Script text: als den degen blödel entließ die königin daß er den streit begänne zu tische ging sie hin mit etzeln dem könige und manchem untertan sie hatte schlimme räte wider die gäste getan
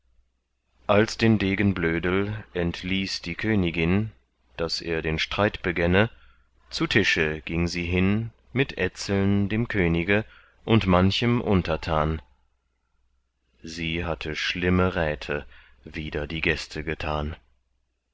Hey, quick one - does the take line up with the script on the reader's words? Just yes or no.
yes